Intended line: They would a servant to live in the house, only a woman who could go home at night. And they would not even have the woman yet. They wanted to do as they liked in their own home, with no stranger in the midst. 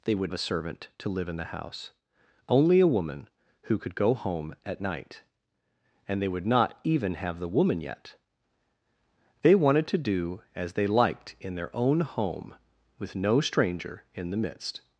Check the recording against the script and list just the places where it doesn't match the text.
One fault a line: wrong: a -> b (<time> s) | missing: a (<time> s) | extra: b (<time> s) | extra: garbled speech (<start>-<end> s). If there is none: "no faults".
no faults